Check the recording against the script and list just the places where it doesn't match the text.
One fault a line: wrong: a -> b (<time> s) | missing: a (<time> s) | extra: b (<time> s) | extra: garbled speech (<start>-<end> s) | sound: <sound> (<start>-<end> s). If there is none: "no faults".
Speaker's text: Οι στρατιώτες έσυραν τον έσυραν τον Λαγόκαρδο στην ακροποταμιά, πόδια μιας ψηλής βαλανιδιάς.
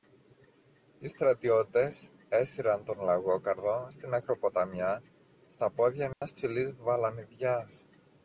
missing: έσυραν τον (3.0 s)
extra: στα (5.5 s)
sound: dropout (6.1-6.2 s)